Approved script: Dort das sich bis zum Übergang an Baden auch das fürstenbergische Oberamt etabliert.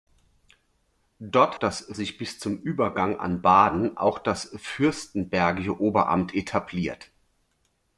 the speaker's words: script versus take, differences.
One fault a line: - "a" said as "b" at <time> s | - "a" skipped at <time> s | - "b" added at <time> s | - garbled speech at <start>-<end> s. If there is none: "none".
none